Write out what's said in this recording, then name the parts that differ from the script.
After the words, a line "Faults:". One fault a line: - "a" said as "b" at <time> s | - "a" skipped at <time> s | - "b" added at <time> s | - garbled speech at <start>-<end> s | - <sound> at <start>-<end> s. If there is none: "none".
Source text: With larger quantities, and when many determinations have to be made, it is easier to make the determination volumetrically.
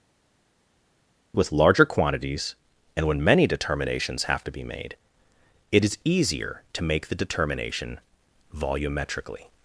With larger quantities, and when many determinations have to be made, it is easier to make the determination volumetrically.
Faults:
none